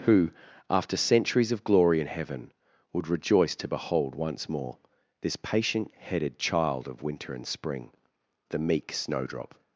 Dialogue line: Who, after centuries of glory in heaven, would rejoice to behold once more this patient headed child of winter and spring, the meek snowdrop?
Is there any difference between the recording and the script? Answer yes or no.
no